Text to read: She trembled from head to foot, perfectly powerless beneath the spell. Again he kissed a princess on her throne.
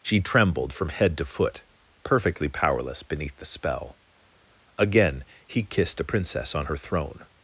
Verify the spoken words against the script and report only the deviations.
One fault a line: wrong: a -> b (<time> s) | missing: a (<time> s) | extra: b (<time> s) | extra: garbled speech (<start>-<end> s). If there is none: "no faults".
no faults